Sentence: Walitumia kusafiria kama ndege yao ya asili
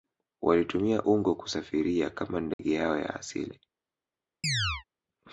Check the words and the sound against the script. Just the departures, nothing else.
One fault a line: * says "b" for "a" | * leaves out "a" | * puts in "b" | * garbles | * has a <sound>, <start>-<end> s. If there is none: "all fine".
* puts in "ungo"
* has a dropout, 2.5-2.6 s
* has a chirp, 4.4-4.8 s